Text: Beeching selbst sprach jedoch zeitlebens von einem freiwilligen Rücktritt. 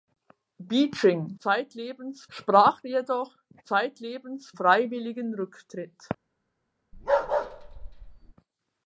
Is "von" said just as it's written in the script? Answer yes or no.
no